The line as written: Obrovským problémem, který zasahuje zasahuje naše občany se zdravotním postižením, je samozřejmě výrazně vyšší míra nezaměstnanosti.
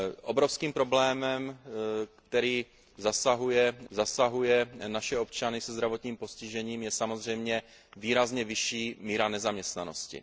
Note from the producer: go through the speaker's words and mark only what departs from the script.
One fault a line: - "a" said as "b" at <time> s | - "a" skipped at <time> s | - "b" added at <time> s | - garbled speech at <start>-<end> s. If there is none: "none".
none